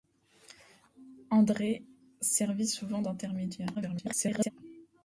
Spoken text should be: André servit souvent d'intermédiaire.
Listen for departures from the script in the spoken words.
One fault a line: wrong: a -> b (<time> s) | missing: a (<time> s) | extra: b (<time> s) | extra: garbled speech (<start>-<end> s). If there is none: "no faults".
extra: garbled speech (3.7-4.5 s)